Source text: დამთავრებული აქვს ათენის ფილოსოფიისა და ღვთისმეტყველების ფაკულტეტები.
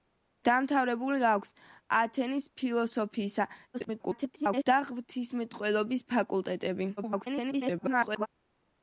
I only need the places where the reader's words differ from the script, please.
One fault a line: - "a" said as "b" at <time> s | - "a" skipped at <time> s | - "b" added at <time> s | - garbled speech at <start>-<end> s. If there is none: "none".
- garbled speech at 3.7-4.6 s
- garbled speech at 7.0-8.3 s